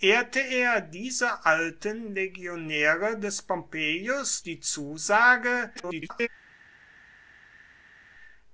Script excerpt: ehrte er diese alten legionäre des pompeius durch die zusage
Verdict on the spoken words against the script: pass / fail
fail